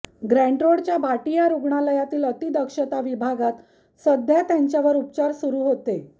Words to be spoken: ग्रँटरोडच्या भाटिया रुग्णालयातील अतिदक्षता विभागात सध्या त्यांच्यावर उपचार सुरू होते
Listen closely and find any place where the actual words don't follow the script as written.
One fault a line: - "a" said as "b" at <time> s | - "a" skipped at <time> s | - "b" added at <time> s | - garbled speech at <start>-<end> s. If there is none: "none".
none